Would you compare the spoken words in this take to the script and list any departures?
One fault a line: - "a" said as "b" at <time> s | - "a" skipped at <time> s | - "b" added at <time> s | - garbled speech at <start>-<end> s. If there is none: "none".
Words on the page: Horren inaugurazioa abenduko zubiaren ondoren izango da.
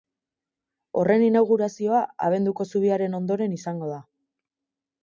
none